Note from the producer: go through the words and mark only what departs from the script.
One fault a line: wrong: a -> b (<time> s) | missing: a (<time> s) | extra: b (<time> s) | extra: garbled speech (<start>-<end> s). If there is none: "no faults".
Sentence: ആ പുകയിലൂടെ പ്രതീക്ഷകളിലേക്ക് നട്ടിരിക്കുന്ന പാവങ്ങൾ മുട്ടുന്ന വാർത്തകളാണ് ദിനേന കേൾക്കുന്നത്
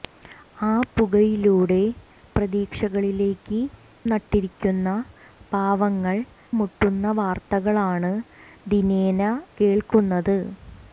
no faults